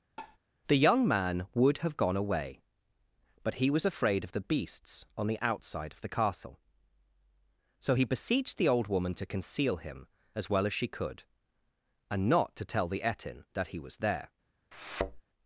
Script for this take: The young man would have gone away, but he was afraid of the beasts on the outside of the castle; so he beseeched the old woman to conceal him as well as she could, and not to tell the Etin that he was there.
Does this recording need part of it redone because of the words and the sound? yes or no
yes